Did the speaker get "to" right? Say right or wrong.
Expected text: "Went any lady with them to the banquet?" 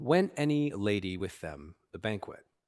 wrong